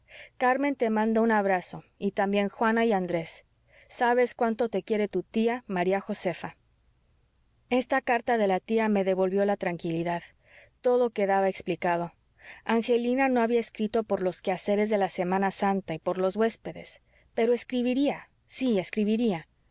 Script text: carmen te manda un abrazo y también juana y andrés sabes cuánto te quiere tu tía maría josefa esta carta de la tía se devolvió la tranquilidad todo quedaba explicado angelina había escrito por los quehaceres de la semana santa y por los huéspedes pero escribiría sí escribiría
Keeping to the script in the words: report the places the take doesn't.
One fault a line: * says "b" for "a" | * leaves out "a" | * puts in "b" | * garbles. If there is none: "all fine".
* says "me" for "se"
* puts in "no"